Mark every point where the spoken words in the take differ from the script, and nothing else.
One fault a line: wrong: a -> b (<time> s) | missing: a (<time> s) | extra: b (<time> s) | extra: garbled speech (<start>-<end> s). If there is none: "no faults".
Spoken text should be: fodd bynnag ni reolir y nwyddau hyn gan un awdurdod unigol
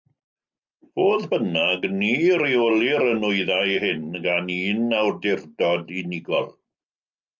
no faults